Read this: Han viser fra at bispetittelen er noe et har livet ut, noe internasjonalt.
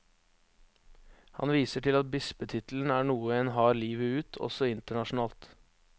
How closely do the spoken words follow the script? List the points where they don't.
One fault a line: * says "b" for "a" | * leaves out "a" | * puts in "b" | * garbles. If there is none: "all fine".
* says "til" for "fra"
* says "en" for "et"
* says "også" for "noe"